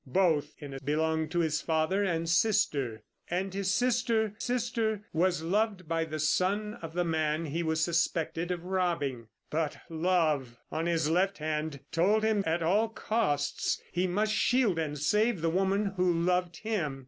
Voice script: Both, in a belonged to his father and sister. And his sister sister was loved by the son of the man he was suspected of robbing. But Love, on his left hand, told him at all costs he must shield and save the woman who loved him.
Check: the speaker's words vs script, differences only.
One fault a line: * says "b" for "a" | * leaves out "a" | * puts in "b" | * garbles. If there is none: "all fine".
all fine